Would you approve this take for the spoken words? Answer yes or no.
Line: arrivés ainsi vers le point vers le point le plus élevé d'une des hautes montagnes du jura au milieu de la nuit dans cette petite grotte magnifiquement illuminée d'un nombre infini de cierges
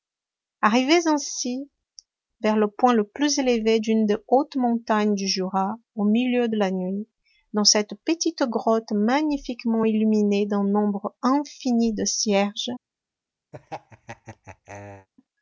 no